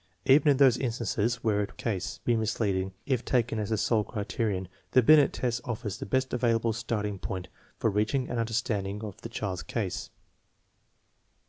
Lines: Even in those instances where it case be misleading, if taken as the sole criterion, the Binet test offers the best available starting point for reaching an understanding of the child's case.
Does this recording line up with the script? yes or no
yes